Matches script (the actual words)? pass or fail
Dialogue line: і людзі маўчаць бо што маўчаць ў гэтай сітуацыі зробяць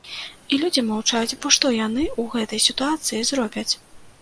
fail